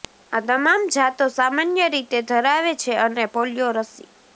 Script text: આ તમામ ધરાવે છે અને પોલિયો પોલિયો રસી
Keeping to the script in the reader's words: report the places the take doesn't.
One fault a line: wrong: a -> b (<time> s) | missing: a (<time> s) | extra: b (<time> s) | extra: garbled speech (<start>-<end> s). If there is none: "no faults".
extra: જાતો સામાન્ય રીતે (0.9 s)
missing: પોલિયો (3.7 s)